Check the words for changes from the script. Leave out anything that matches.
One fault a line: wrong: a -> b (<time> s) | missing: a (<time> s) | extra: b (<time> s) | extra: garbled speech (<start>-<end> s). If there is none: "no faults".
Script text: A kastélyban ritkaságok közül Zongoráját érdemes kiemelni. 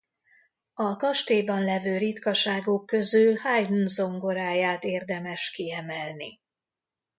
extra: levő (1.6 s)
extra: Haydn (3.3 s)